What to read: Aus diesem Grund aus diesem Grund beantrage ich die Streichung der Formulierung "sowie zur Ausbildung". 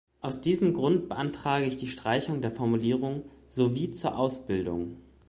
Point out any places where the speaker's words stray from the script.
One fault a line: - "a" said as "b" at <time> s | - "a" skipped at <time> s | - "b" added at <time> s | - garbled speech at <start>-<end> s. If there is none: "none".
- "aus diesem Grund" skipped at 1.1 s